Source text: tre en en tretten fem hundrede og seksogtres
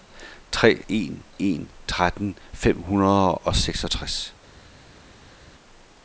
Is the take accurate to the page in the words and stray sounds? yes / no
yes